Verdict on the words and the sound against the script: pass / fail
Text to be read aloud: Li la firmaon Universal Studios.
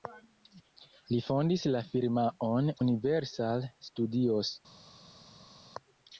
fail